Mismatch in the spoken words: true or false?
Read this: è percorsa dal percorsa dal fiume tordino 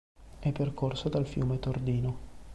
true